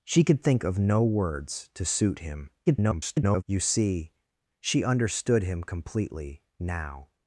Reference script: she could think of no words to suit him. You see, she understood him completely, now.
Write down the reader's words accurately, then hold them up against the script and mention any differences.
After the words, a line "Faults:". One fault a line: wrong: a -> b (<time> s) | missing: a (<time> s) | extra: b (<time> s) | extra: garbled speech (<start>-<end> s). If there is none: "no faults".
she could think of no words to suit him. [garbled] You see, she understood him completely, now.
Faults:
extra: garbled speech (2.7-3.4 s)